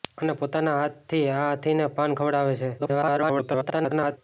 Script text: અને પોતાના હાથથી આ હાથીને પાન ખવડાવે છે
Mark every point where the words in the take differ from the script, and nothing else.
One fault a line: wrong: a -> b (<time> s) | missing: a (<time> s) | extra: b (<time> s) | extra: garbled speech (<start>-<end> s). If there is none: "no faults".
extra: garbled speech (2.8-4.2 s)